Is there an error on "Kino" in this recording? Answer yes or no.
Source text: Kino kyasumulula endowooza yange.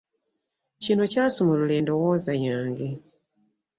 no